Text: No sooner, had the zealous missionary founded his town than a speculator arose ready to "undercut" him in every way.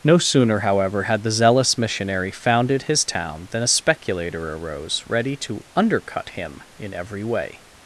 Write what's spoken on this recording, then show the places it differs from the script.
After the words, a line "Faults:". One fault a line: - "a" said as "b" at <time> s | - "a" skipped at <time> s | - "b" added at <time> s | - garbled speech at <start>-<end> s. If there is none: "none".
No sooner, however, had the zealous missionary founded his town than a speculator arose ready to "undercut" him in every way.
Faults:
- "however" added at 0.6 s